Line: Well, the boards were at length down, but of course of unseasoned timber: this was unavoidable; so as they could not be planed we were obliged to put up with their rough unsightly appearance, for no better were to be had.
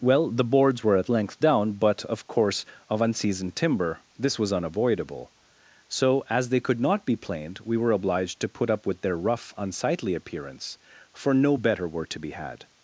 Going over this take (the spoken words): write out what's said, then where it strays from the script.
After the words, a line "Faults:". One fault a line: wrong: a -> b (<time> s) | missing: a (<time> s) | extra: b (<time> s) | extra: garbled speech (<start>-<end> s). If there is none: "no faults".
Well, the boards were at length down, but of course of unseasoned timber: this was unavoidable; so as they could not be planed we were obliged to put up with their rough unsightly appearance, for no better were to be had.
Faults:
no faults